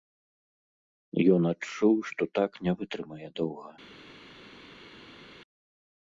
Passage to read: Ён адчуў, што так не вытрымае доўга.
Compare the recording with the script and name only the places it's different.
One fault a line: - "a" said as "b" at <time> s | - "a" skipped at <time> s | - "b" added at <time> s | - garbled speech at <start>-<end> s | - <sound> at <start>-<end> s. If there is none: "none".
none